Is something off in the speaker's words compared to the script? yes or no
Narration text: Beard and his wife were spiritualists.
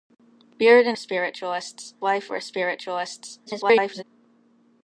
yes